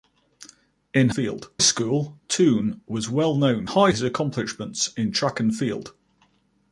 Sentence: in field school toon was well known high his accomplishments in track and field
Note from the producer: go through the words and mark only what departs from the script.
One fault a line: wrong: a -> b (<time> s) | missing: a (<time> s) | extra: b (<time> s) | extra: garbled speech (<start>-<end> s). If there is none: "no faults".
no faults